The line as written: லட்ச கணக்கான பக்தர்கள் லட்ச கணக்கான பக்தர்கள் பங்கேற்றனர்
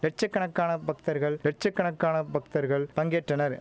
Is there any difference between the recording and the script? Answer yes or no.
no